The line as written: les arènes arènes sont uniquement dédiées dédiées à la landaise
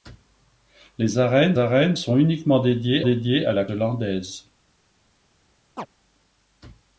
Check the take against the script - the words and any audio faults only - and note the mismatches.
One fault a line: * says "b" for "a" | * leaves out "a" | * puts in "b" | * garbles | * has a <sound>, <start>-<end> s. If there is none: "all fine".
* has a chirp, 5.8-5.9 s